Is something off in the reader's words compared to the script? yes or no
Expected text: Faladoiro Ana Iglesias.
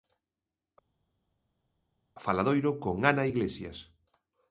yes